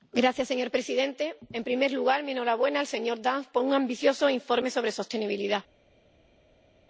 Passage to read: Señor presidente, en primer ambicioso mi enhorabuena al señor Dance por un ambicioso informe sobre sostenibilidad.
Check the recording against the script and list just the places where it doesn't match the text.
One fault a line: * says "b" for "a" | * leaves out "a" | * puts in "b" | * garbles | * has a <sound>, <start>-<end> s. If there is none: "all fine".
* says "lugar" for "ambicioso"